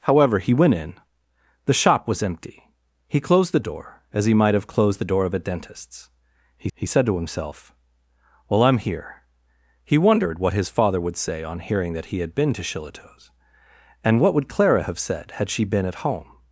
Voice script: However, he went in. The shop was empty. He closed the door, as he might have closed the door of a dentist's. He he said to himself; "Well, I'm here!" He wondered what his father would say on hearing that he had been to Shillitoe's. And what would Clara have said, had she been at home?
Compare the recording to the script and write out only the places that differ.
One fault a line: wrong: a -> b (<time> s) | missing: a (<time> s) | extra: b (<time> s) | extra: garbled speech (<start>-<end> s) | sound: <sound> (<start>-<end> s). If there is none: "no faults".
no faults